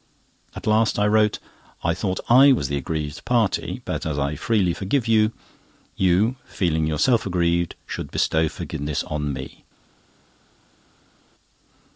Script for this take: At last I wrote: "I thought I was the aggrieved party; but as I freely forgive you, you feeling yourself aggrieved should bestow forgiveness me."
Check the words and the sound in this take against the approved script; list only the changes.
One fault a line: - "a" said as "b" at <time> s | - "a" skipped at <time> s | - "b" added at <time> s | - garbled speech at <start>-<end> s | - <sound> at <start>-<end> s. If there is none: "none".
- "on" added at 9.0 s